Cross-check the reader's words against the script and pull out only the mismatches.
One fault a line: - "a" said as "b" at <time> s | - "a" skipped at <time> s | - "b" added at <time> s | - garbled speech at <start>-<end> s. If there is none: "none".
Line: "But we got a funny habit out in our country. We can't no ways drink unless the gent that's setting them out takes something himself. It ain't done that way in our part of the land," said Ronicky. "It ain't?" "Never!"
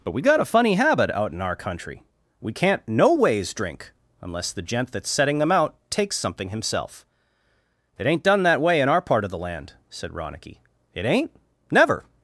none